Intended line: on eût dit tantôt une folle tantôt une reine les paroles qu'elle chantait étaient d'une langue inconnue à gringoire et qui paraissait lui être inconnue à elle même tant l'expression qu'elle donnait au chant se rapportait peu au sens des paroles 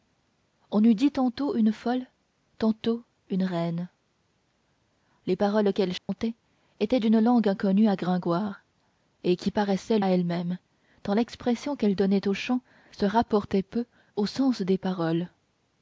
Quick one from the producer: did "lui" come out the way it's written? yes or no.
no